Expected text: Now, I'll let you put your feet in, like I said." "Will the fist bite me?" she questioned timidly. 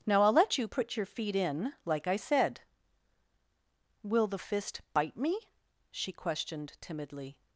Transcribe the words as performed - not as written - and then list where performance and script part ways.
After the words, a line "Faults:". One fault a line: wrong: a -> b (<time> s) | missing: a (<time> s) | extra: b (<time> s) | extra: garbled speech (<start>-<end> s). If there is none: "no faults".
Now, I'll let you put your feet in, like I said." "Will the fist bite me?" she questioned timidly.
Faults:
no faults